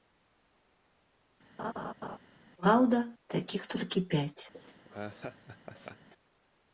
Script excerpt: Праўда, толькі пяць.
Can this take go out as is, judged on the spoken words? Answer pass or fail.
fail